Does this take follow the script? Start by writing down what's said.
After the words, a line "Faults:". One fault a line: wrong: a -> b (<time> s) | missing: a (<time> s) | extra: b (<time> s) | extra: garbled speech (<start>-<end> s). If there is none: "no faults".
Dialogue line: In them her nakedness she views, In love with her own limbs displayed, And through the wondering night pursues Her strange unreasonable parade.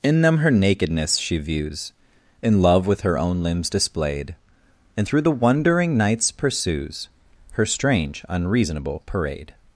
In them her nakedness she views, In love with her own limbs displayed, And through the wondering nights pursues Her strange unreasonable parade.
Faults:
wrong: night -> nights (6.0 s)